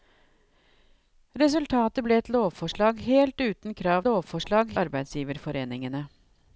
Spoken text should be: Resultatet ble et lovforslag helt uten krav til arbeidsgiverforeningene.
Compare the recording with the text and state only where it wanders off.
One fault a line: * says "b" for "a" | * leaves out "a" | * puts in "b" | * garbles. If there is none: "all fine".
* says "lovforslag" for "til"